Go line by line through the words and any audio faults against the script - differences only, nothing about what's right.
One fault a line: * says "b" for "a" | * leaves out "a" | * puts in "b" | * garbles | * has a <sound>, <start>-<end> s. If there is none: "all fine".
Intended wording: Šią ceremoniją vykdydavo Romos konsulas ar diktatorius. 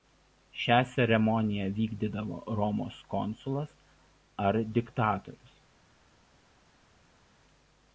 all fine